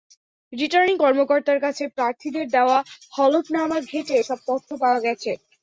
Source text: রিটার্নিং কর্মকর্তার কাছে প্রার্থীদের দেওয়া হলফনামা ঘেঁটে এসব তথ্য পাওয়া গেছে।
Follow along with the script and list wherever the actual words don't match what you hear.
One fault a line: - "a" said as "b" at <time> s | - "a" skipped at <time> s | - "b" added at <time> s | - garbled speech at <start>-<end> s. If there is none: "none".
none